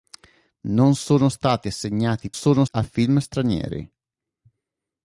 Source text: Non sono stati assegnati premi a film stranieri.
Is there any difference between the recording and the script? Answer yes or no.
yes